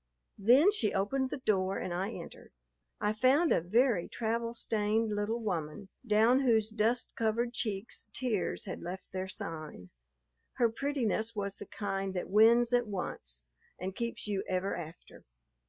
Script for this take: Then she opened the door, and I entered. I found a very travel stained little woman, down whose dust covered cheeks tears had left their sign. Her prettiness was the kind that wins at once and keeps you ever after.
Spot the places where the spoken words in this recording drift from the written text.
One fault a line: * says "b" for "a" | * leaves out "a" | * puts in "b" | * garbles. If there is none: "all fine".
all fine